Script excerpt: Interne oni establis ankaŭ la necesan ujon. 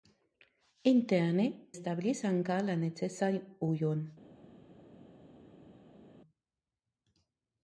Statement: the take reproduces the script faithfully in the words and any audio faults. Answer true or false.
false